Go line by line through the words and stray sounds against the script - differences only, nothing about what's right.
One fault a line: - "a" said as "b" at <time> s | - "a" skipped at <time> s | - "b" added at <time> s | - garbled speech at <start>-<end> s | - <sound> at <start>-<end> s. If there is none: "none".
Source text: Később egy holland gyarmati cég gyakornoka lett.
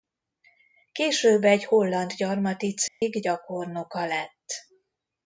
- dropout at 2.9-3.0 s